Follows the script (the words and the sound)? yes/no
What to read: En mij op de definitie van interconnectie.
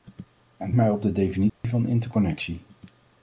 no